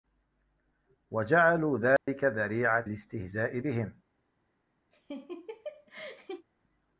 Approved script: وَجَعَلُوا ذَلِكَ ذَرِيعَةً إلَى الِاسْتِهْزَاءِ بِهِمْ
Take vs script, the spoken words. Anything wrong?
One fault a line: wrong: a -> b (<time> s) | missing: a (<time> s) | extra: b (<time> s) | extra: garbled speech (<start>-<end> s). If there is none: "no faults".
missing: إلَى (2.9 s)